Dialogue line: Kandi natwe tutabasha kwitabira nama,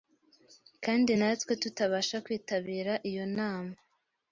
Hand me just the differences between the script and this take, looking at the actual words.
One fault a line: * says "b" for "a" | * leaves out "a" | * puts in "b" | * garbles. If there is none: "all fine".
* puts in "iyo"